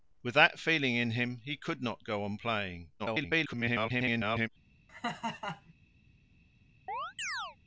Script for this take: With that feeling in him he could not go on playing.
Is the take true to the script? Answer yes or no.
no